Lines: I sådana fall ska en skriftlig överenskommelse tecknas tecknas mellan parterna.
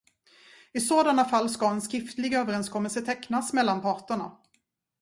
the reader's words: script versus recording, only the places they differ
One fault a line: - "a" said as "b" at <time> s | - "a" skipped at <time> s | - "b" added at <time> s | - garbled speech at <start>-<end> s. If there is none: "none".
- "tecknas" skipped at 3.5 s